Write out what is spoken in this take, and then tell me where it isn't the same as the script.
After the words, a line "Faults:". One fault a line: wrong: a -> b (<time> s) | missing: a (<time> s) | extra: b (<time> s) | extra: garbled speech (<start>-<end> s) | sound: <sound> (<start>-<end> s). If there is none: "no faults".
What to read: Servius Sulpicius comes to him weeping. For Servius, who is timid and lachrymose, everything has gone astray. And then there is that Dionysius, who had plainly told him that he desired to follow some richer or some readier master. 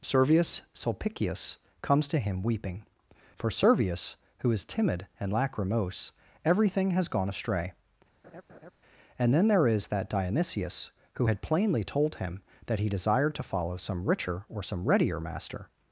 Servius Sulpicius comes to him weeping. For Servius, who is timid and lachrymose, everything has gone astray. And then there is that Dionysius, who had plainly told him that he desired to follow some richer or some readier master.
Faults:
sound: laugh (8.2-8.7 s)